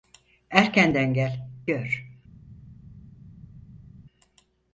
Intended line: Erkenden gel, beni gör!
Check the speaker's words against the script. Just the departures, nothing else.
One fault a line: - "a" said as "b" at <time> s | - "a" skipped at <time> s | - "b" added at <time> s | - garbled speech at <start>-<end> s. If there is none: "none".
- "beni" skipped at 1.5 s